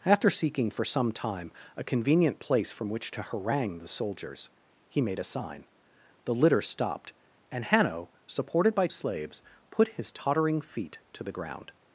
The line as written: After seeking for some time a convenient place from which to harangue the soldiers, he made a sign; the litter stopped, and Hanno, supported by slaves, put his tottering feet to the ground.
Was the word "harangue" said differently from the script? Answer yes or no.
no